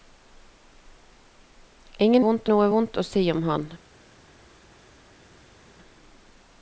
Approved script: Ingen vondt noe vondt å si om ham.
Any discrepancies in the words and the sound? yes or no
no